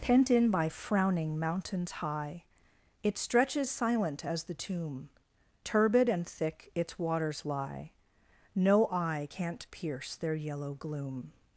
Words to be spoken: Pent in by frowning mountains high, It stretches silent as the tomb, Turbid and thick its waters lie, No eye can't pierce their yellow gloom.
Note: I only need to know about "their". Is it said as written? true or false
true